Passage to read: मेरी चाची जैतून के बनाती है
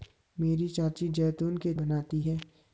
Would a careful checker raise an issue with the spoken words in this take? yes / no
no